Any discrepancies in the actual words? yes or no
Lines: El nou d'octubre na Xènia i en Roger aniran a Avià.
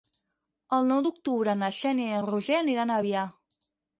no